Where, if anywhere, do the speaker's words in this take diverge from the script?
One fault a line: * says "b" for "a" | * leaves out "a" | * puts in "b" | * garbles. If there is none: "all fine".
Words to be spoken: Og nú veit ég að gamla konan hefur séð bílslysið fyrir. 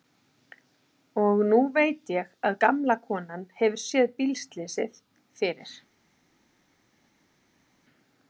all fine